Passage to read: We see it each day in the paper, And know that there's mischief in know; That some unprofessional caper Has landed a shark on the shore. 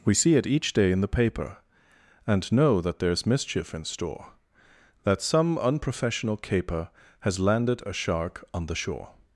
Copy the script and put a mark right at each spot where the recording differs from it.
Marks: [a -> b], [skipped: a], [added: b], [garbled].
We see it each day in the paper, And know that there's mischief in [know; -> store] That some unprofessional caper Has landed a shark on the shore.